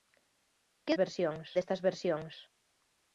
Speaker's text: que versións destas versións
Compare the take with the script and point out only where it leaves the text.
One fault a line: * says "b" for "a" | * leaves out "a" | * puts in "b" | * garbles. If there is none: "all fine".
all fine